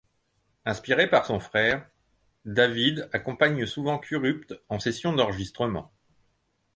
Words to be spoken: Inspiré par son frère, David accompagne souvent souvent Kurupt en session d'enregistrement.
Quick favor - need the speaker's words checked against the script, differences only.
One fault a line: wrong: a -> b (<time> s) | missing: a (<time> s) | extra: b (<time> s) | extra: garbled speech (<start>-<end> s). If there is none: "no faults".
missing: souvent (4.0 s)